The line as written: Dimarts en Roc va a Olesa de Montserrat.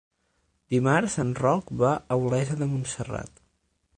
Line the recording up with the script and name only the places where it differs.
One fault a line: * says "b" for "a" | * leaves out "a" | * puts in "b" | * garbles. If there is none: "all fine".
all fine